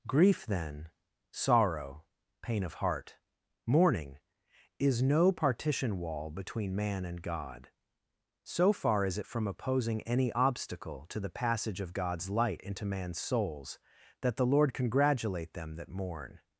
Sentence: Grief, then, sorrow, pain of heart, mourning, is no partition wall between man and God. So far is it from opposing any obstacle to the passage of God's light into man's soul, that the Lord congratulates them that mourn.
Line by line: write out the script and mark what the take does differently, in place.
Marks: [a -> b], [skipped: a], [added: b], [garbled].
Grief, then, sorrow, pain of heart, mourning, is no partition wall between man and God. So far is it from opposing any obstacle to the passage of God's light into man's [soul, -> souls] that the Lord [congratulates -> congratulate] them that mourn.